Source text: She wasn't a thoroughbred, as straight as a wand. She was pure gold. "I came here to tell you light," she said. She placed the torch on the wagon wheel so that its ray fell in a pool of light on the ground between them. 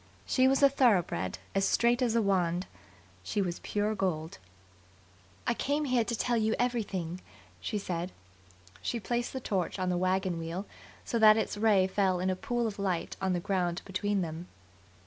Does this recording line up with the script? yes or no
no